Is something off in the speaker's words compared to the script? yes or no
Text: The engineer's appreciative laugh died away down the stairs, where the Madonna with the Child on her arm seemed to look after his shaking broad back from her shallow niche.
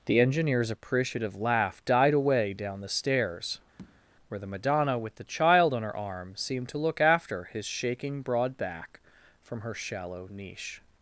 no